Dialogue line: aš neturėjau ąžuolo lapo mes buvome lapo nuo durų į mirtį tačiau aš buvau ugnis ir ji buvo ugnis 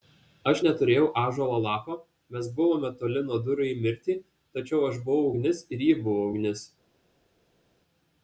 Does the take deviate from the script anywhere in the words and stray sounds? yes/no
yes